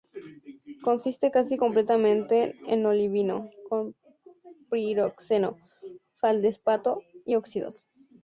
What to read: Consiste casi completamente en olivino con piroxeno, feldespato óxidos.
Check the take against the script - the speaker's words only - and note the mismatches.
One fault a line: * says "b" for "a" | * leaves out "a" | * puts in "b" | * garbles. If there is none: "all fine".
* puts in "y"